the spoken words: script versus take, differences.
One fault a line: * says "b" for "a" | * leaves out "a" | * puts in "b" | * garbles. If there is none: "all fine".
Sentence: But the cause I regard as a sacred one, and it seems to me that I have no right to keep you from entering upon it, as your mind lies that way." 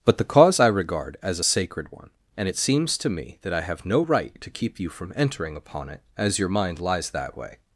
all fine